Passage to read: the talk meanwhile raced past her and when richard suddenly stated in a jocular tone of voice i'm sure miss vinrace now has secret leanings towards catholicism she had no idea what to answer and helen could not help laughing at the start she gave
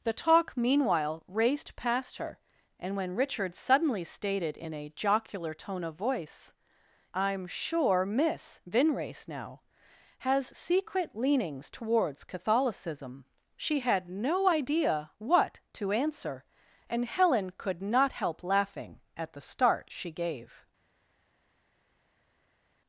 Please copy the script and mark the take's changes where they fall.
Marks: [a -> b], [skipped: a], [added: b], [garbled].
the talk meanwhile raced past her and when richard suddenly stated in a jocular tone of voice i'm sure miss vinrace now has secret leanings towards catholicism she had no idea what to answer and helen could not help laughing at the start she gave